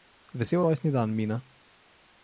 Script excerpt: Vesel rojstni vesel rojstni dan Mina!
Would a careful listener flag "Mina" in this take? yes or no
no